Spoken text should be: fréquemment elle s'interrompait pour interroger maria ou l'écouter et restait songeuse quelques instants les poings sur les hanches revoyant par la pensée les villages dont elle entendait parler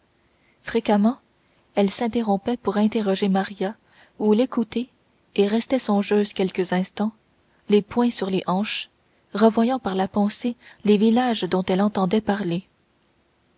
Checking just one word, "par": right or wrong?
right